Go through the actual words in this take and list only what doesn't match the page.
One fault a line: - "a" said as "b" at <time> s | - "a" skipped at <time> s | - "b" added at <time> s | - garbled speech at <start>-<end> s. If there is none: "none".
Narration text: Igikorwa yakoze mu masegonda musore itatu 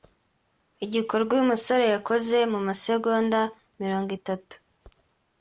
- "uyu musore" added at 1.4 s
- "musore" said as "mirongo" at 3.8 s